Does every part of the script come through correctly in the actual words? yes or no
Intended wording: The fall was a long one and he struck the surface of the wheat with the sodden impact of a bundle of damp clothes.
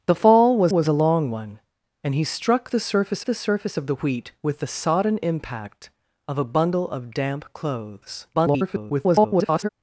no